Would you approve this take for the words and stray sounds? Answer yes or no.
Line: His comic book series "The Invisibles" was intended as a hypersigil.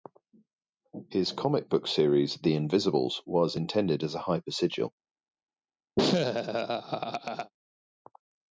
no